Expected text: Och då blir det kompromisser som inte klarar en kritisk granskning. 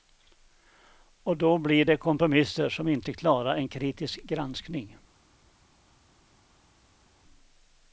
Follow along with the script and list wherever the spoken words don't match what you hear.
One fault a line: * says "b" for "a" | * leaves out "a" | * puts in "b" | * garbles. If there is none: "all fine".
all fine